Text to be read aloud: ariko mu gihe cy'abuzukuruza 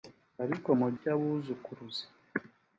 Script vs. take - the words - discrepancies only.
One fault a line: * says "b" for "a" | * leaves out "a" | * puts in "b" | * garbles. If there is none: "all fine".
* leaves out "gihe"